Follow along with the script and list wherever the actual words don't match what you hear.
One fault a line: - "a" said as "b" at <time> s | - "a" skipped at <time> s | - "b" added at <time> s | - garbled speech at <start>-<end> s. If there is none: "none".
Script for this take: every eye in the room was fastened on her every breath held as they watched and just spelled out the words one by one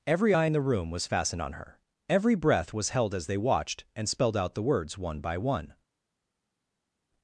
- "was" added at 2.7 s
- "just" skipped at 4.1 s